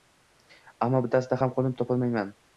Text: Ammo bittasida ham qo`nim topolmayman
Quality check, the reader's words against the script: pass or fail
pass